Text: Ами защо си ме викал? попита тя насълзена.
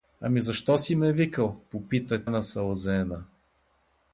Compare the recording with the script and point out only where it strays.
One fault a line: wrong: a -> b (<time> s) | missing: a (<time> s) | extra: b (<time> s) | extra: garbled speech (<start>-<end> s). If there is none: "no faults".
missing: тя (2.2 s)